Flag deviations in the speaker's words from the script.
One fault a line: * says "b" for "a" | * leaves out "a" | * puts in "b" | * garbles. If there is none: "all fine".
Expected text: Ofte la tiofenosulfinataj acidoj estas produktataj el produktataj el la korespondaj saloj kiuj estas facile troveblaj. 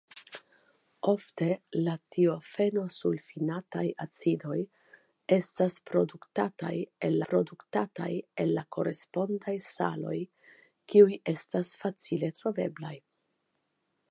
all fine